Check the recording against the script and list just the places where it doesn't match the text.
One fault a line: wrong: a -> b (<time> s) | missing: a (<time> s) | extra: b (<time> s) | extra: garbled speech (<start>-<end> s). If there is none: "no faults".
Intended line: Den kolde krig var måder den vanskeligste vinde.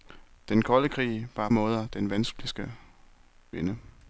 no faults